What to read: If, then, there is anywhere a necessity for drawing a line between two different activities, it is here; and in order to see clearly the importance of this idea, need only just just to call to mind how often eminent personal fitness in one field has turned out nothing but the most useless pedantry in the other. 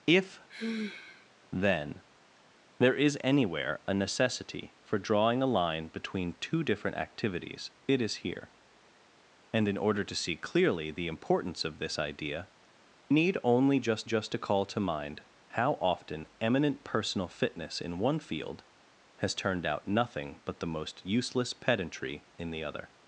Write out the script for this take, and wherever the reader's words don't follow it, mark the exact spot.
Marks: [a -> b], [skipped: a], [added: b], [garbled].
If, then, there is anywhere a necessity for drawing a line between two different activities, it is here; and in order to see clearly the importance of this idea, need only just just to call to mind how often eminent personal fitness in one field has turned out nothing but the most useless pedantry in the other.